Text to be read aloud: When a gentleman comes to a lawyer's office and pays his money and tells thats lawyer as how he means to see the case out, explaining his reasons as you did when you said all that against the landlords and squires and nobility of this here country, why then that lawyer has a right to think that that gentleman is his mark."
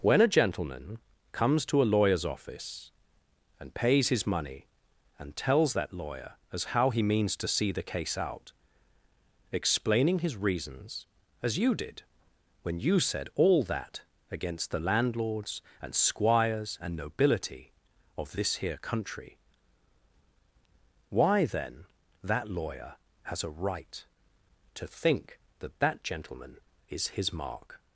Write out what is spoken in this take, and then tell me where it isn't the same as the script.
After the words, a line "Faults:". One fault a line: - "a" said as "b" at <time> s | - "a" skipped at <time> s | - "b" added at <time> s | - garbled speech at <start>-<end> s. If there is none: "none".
When a gentleman comes to a lawyer's office and pays his money and tells that lawyer as how he means to see the case out, explaining his reasons as you did when you said all that against the landlords and squires and nobility of this here country, why then that lawyer has a right to think that that gentleman is his mark."
Faults:
- "thats" said as "that" at 5.7 s